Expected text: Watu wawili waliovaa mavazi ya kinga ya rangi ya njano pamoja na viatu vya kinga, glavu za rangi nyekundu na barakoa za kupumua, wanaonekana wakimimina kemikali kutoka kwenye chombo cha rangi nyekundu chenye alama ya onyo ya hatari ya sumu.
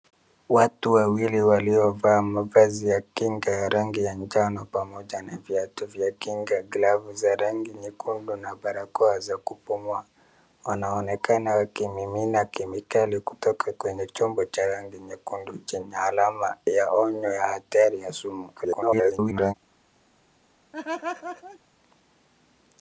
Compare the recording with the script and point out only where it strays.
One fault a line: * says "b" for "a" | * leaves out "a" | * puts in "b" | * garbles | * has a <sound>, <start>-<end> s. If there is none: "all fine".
* garbles
* has a laugh, 20.7-21.6 s